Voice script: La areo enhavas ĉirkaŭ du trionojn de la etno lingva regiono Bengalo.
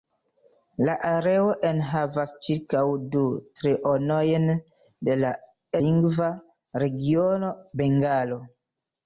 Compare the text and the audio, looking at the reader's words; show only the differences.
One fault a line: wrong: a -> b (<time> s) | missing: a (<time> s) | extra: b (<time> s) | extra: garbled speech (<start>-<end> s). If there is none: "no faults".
missing: etno (5.3 s)